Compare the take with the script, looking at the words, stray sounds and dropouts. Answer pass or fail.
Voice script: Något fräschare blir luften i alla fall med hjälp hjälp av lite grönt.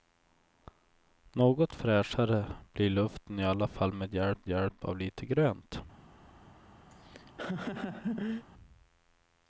fail